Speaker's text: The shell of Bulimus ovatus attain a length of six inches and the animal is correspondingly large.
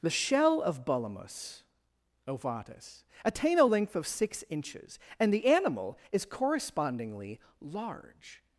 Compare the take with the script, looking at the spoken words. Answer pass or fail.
pass